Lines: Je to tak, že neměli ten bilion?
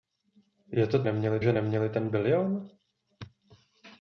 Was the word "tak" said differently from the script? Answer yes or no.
yes